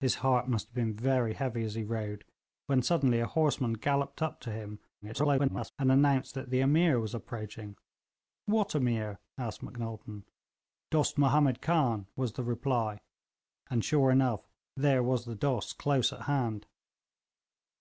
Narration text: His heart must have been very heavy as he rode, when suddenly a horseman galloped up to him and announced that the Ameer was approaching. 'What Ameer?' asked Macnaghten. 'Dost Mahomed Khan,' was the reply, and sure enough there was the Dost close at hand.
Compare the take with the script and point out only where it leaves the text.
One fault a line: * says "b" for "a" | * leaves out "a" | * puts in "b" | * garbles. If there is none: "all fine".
* garbles